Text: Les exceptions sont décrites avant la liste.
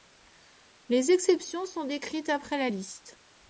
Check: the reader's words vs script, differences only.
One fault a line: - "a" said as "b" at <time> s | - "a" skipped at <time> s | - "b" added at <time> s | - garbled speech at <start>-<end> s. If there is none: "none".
- "avant" said as "après" at 2.3 s